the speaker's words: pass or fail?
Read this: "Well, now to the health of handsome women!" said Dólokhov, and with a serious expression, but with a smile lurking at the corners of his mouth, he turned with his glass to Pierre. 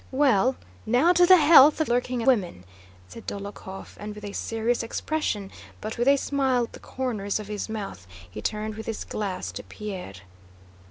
fail